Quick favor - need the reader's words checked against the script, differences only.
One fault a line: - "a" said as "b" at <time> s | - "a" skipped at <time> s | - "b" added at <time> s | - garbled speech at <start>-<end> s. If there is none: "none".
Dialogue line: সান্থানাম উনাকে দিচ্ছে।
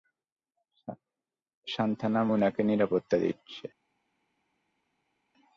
- "নিরাপত্তা" added at 2.6 s